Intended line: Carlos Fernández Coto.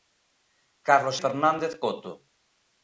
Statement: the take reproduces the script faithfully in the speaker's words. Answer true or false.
true